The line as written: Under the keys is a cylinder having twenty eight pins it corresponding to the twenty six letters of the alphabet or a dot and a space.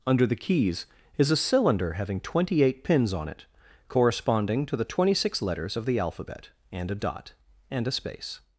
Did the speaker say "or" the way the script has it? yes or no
no